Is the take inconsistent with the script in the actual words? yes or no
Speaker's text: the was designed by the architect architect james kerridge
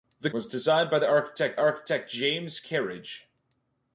no